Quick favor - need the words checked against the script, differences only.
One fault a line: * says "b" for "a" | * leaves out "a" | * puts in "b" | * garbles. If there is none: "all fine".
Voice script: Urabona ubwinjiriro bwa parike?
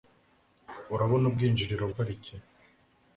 * leaves out "bwa"